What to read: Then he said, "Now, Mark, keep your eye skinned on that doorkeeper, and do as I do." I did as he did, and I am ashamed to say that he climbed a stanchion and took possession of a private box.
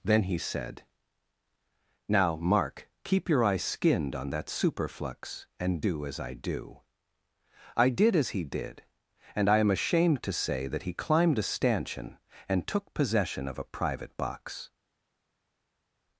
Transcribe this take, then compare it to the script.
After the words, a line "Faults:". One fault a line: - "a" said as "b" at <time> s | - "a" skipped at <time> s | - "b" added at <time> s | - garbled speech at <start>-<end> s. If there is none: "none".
Then he said, "Now, Mark, keep your eye skinned on that superflux, and do as I do." I did as he did, and I am ashamed to say that he climbed a stanchion and took possession of a private box.
Faults:
- "doorkeeper" said as "superflux" at 4.5 s